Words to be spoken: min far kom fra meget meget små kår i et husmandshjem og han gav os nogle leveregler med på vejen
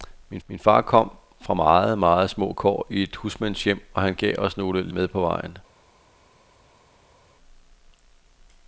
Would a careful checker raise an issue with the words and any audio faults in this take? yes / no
yes